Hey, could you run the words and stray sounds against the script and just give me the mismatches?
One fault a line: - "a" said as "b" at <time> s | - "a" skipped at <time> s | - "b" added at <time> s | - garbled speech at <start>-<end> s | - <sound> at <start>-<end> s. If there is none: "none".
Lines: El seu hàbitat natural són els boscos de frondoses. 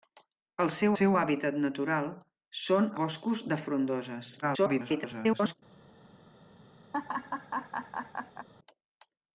- "seu" added at 1.0 s
- "els" skipped at 2.9 s
- garbled speech at 4.4-5.5 s
- laugh at 6.9-8.5 s